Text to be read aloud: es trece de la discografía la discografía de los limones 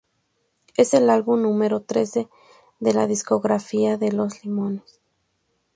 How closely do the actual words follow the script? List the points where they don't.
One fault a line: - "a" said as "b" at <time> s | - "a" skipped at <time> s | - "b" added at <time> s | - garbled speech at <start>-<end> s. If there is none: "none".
- "el álbum número" added at 0.9 s
- "la discografía" skipped at 4.0 s